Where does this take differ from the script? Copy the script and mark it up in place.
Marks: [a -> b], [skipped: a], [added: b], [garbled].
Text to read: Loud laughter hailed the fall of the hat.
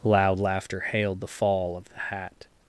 Loud laughter hailed the fall of the hat.